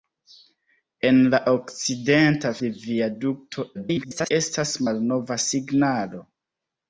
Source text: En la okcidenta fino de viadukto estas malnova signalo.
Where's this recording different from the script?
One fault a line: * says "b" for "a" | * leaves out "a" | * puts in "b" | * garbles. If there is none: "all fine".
* leaves out "fino"
* garbles